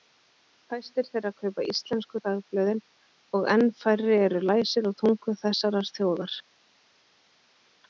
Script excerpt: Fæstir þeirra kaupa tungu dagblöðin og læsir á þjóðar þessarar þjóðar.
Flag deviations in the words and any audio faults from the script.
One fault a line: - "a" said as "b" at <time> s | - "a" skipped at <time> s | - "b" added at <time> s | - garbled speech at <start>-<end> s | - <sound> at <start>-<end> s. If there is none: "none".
- "tungu" said as "íslensku" at 1.7 s
- "enn færri eru" added at 3.6 s
- "þjóðar" said as "tungu" at 5.0 s